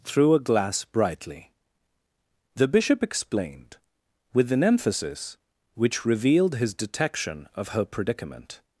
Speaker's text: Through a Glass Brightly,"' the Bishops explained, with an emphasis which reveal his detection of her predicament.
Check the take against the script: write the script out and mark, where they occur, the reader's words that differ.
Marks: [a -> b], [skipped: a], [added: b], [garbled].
Through a Glass Brightly,"' the [Bishops -> Bishop] explained, with an emphasis which [reveal -> revealed] his detection of her predicament.